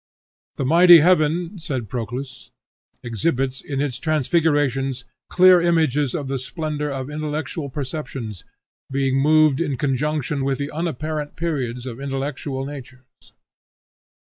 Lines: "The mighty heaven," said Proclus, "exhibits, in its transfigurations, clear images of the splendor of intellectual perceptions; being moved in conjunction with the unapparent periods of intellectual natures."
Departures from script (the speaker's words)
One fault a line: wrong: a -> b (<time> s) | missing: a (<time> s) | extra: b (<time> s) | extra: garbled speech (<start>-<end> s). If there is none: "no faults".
no faults